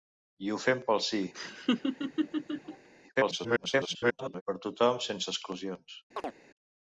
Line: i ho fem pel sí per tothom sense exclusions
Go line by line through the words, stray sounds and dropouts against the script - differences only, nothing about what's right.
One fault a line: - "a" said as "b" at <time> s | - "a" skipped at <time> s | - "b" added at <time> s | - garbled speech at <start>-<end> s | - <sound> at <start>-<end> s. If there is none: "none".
- laugh at 1.3-2.9 s
- garbled speech at 3.2-4.4 s
- chirp at 6.2-6.3 s